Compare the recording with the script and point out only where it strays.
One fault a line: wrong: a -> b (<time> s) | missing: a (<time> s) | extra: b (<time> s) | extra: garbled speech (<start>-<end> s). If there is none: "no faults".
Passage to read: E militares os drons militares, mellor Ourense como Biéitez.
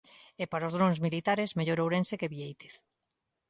wrong: militares -> para (0.5 s)
wrong: como -> que (2.2 s)